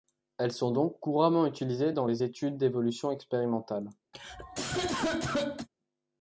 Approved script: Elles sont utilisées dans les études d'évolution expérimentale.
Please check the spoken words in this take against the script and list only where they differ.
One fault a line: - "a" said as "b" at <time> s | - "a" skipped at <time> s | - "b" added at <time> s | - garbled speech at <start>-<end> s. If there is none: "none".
- "donc couramment" added at 0.7 s